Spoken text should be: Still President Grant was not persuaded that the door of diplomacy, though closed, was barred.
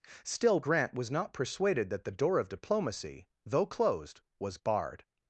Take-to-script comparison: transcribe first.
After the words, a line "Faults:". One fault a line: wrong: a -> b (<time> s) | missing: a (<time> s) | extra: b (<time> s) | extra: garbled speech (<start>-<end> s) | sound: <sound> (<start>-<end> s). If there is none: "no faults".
Still Grant was not persuaded that the door of diplomacy, though closed, was barred.
Faults:
missing: President (0.6 s)